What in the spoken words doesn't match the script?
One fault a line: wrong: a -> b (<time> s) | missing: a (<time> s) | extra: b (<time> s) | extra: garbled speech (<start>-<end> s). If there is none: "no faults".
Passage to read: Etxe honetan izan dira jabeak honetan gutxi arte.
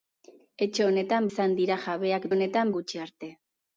no faults